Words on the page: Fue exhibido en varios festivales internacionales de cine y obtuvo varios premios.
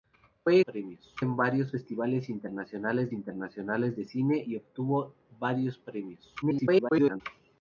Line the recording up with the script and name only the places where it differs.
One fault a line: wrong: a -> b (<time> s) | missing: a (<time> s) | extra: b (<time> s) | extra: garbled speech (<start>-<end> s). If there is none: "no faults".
wrong: exhibido -> premios (0.6 s)
extra: internacionales (3.1 s)
extra: garbled speech (6.4-7.2 s)